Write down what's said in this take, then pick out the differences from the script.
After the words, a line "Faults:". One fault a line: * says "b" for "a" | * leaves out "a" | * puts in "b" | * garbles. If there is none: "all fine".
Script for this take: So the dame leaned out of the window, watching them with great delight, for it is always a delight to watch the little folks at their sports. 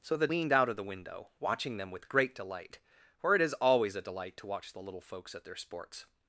So the leaned out of the window, watching them with great delight, for it is always a delight to watch the little folks at their sports.
Faults:
* leaves out "dame"